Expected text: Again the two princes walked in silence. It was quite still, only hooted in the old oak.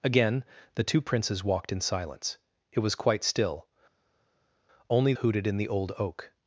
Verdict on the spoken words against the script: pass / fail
pass